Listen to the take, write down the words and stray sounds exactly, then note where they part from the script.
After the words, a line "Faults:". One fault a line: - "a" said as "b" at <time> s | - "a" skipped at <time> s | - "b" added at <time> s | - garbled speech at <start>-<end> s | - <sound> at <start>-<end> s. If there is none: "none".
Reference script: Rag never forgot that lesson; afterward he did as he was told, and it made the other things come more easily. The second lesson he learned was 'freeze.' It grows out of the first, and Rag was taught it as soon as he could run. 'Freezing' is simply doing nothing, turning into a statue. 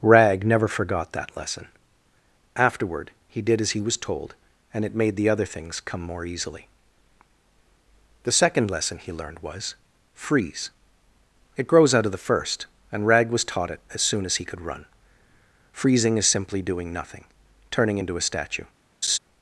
Rag never forgot that lesson; afterward he did as he was told, and it made the other things come more easily. The second lesson he learned was 'freeze.' It grows out of the first, and Rag was taught it as soon as he could run. 'Freezing' is simply doing nothing, turning into a statue.
Faults:
- laugh at 19.0-19.2 s